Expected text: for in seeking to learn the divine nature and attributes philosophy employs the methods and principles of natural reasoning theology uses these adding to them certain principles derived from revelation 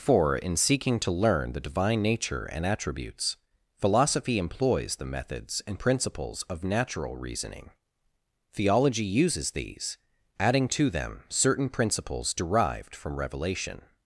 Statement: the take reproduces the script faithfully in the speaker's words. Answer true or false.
true